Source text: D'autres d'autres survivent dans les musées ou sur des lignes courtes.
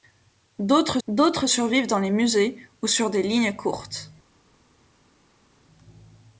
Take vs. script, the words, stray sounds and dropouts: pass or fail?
pass